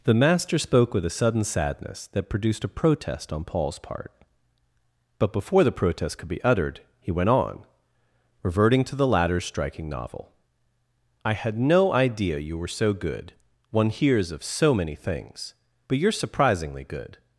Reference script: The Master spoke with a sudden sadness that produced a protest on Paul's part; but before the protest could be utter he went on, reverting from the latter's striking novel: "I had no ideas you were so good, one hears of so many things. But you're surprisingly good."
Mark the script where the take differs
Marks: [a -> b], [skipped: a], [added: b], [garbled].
The Master spoke with a sudden sadness that produced a protest on Paul's part; but before the protest could be [utter -> uttered] he went on, reverting [from -> to] the latter's striking novel: "I had no [ideas -> idea] you were so good, one hears of so many things. But you're surprisingly good."